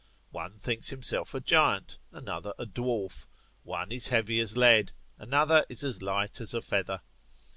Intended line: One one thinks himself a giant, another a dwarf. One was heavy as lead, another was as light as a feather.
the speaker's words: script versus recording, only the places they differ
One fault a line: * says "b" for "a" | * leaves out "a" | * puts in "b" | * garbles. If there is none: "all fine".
* leaves out "one"
* says "is" for "was"
* says "is" for "was"